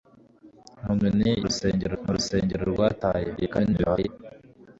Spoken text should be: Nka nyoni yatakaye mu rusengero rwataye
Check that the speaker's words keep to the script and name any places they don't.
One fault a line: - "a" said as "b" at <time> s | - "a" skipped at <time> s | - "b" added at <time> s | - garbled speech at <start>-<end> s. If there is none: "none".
- "yatakaye" said as "rusengero" at 1.5 s
- garbled speech at 3.4-4.1 s